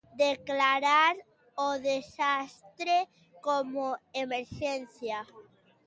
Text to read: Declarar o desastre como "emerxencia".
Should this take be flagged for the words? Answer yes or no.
no